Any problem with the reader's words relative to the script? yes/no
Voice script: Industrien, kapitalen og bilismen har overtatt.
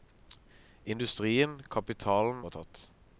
yes